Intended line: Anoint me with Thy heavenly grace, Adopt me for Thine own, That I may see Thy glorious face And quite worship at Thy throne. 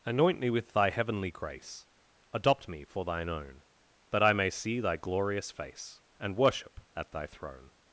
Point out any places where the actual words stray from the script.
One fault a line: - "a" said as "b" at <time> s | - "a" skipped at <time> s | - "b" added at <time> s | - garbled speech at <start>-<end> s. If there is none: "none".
- "quite" skipped at 6.4 s